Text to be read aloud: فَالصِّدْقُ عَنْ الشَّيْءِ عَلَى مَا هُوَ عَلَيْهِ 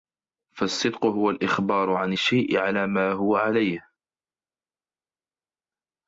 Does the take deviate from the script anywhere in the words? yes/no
yes